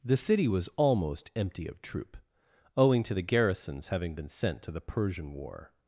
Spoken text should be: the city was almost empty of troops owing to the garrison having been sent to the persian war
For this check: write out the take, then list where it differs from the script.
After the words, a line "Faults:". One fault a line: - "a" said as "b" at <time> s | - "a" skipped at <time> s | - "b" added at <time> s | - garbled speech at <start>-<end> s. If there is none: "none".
the city was almost empty of troop owing to the garrisons having been sent to the persian war
Faults:
- "troops" said as "troop" at 1.8 s
- "garrison" said as "garrisons" at 3.2 s